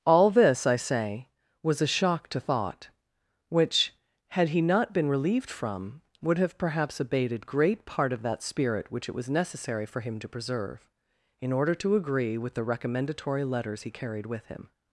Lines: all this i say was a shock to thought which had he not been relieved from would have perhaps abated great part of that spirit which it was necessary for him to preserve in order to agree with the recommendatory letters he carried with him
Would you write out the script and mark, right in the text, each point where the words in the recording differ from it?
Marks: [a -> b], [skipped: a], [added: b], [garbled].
all this i say was a shock to thought which had he not been relieved from would have perhaps abated great part of that spirit which it was necessary for him to preserve in order to agree with the recommendatory letters he carried with him